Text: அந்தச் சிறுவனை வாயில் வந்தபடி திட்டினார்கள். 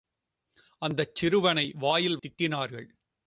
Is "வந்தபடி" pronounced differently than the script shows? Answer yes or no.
yes